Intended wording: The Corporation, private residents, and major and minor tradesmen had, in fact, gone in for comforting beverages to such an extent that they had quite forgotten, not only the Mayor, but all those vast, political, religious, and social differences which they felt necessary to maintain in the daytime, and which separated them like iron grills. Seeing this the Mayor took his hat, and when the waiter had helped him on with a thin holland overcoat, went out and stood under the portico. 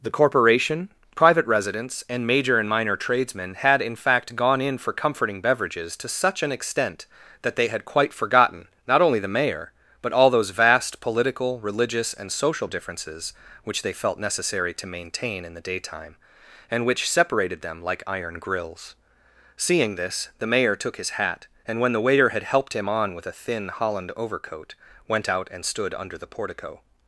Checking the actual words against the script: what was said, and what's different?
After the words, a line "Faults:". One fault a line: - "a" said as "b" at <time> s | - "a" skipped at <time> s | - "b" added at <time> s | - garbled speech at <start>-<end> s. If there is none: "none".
The Corporation, private residents, and major and minor tradesmen had, in fact, gone in for comforting beverages to such an extent that they had quite forgotten, not only the Mayor, but all those vast, political, religious, and social differences which they felt necessary to maintain in the daytime, and which separated them like iron grills. Seeing this the Mayor took his hat, and when the waiter had helped him on with a thin holland overcoat, went out and stood under the portico.
Faults:
none